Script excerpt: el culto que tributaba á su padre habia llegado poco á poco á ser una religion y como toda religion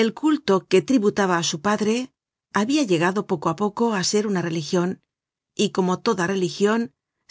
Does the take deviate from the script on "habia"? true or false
false